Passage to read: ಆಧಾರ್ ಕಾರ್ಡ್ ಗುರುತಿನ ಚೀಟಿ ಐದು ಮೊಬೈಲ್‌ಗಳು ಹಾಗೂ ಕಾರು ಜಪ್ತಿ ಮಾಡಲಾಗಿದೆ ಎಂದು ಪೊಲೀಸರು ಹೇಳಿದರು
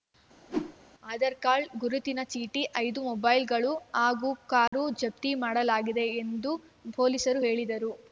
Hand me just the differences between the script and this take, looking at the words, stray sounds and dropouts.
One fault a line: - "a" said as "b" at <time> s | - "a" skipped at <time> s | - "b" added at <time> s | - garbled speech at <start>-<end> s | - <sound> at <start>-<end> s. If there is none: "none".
- whoosh at 0.5-0.8 s
- dropout at 4.7-4.7 s